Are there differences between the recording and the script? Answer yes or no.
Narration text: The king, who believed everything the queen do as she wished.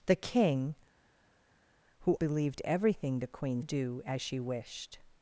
no